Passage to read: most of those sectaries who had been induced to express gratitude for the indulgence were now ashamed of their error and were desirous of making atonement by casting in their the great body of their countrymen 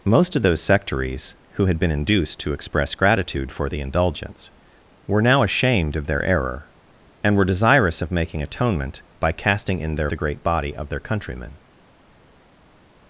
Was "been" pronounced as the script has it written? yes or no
yes